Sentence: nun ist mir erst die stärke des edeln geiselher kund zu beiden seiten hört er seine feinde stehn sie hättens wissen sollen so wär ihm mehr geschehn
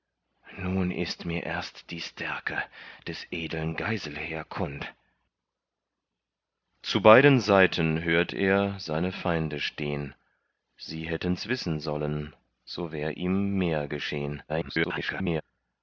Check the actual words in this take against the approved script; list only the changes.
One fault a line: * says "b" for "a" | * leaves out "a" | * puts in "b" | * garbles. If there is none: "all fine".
* garbles